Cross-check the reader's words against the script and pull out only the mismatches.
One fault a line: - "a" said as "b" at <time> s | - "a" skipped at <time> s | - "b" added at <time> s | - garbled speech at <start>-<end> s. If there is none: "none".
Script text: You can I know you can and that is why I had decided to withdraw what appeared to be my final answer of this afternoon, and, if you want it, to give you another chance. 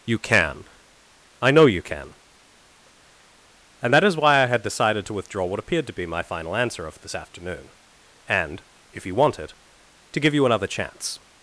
none